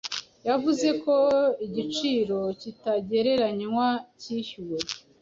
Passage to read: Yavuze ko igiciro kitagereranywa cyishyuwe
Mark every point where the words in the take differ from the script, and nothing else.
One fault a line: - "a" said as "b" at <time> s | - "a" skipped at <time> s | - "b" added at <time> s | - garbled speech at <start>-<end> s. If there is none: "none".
none